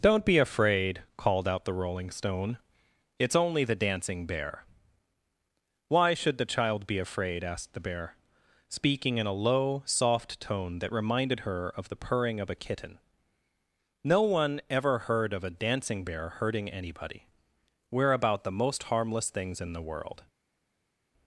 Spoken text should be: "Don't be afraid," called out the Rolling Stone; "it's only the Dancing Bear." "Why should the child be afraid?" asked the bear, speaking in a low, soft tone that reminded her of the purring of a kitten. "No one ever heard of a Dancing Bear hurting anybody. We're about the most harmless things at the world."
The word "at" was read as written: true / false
false